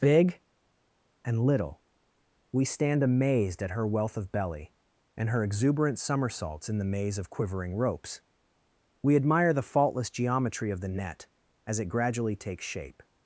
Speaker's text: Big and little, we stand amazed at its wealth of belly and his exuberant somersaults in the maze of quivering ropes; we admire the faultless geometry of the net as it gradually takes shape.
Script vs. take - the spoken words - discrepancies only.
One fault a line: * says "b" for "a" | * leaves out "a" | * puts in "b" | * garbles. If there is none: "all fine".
* says "her" for "its"
* says "her" for "his"